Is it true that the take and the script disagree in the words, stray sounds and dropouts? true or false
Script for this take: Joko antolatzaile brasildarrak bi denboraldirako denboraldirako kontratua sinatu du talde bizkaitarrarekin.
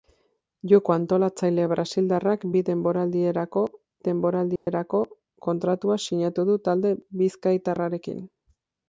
true